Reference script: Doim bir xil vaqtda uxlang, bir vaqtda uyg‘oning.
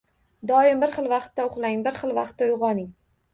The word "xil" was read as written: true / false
true